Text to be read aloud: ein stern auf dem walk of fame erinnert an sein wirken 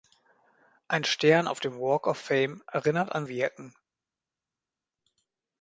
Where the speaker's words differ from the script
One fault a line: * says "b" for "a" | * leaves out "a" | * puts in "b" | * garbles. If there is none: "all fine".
* leaves out "sein"